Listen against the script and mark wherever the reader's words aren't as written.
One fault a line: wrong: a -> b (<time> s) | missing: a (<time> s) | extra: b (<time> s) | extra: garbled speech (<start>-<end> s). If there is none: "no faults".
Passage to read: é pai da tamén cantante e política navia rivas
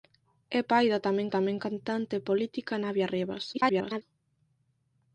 extra: tamén (1.4 s)
extra: garbled speech (3.5-4.0 s)